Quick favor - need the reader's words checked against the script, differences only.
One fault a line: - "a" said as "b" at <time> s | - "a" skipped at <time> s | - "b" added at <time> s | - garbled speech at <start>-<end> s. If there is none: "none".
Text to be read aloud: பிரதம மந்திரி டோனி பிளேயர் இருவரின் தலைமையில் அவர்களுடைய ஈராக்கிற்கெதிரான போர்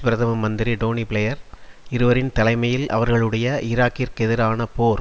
none